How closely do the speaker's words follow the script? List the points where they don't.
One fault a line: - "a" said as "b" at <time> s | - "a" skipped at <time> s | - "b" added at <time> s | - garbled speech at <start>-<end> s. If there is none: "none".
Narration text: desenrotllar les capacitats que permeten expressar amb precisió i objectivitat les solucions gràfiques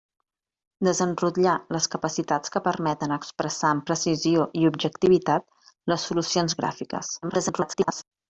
- garbled speech at 7.2-8.0 s